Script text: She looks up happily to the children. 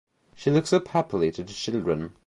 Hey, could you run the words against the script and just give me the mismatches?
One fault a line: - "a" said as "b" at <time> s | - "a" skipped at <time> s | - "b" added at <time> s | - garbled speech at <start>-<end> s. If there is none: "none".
none